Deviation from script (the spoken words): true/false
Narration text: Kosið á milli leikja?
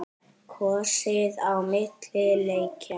false